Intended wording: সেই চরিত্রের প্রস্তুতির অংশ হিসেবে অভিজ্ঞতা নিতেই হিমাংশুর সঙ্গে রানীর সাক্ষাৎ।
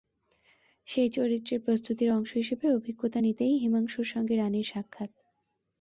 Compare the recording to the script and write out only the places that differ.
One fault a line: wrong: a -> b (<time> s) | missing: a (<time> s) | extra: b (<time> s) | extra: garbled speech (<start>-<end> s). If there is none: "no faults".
no faults